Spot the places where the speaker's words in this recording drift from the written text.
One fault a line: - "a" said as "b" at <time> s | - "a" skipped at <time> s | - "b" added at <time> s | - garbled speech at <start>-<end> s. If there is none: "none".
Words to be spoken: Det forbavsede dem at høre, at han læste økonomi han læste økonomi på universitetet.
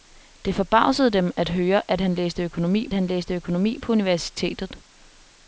none